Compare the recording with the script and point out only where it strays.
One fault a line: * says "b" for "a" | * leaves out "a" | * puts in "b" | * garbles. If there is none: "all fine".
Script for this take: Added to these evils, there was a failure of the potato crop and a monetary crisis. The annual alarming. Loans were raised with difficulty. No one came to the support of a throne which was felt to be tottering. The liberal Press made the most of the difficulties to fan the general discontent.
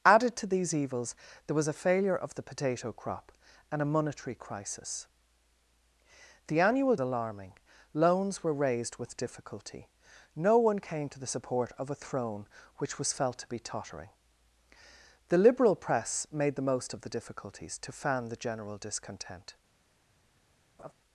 all fine